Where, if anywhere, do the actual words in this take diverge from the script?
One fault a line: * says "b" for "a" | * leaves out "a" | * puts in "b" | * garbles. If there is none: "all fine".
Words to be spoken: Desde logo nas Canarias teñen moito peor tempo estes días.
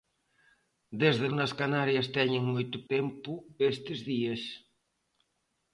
* leaves out "logo"
* leaves out "peor"